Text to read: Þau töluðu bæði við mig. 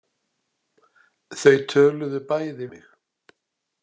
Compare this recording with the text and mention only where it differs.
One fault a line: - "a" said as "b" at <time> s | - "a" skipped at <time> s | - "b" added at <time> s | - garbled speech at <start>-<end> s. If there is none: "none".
- "við" skipped at 2.7 s